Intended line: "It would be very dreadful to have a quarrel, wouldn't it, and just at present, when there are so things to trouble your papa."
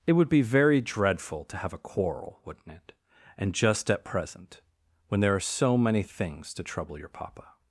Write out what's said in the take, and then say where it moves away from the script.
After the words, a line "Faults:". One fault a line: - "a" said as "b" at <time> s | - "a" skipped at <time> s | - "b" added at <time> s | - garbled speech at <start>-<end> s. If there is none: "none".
"It would be very dreadful to have a quarrel, wouldn't it, and just at present, when there are so many things to trouble your papa."
Faults:
- "many" added at 5.8 s